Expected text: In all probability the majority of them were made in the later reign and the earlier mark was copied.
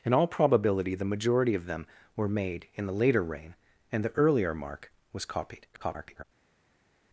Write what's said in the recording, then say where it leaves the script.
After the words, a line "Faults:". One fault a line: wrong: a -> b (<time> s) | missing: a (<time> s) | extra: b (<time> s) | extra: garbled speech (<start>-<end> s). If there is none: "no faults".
In all probability the majority of them were made in the later reign and the earlier mark was copied. [garbled]
Faults:
extra: garbled speech (5.7-6.2 s)